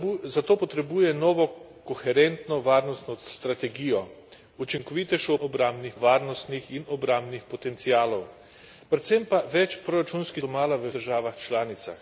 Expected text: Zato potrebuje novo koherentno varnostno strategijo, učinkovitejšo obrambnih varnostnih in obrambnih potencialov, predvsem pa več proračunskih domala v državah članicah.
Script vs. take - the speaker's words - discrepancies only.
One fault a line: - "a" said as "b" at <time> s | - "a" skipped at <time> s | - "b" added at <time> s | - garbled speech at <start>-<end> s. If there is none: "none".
none